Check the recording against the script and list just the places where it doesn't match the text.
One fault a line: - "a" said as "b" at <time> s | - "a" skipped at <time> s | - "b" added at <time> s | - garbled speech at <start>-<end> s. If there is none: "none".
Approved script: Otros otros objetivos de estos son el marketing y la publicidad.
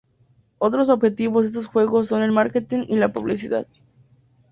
- "otros" skipped at 0.9 s
- "juegos" added at 1.7 s